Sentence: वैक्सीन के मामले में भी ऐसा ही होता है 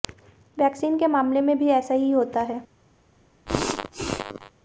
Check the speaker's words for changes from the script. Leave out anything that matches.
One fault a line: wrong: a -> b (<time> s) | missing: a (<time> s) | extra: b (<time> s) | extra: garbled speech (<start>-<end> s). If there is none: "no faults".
no faults